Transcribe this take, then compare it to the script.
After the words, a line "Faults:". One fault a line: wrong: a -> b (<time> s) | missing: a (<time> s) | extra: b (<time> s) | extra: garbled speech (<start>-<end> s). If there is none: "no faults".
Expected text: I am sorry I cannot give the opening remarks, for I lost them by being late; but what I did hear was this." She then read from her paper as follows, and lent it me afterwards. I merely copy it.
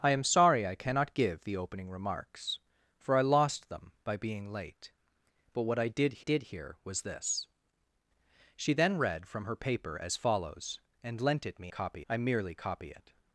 I am sorry I cannot give the opening remarks, for I lost them by being late; but what I did did hear was this." She then read from her paper as follows, and lent it me copy. I merely copy it.
Faults:
extra: did (6.2 s)
wrong: afterwards -> copy (11.7 s)